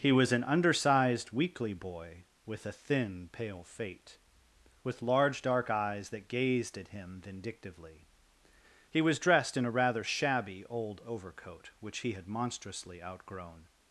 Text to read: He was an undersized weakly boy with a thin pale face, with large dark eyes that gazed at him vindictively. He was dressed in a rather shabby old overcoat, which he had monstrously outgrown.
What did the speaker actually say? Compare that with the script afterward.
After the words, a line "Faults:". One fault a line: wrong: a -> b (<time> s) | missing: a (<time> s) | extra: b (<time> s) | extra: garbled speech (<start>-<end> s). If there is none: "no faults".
He was an undersized weakly boy with a thin pale fate, with large dark eyes that gazed at him vindictively. He was dressed in a rather shabby old overcoat, which he had monstrously outgrown.
Faults:
wrong: face -> fate (3.7 s)